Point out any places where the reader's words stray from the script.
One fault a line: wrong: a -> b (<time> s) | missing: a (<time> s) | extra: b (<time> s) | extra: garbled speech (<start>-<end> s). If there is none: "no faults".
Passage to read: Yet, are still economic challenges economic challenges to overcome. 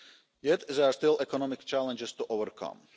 extra: there (0.7 s)
missing: economic challenges (2.1 s)